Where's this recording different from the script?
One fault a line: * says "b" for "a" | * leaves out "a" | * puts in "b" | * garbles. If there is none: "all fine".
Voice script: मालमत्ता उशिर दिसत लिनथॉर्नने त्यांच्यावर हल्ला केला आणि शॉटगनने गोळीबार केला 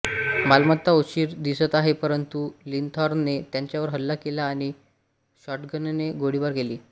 * puts in "आहे परंतु"